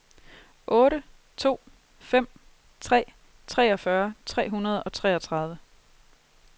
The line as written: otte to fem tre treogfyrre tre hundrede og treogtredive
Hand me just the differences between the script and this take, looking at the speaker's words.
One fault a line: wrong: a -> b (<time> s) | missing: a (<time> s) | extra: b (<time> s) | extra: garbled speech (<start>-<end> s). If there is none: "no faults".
no faults